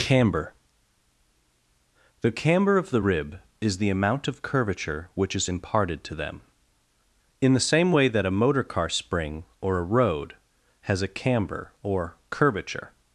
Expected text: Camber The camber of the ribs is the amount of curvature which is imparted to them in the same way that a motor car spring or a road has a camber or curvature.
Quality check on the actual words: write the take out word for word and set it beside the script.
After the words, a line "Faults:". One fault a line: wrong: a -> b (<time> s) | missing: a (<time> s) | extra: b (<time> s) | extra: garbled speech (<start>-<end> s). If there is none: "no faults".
Camber The camber of the rib is the amount of curvature which is imparted to them in the same way that a motor car spring or a road has a camber or curvature.
Faults:
wrong: ribs -> rib (3.0 s)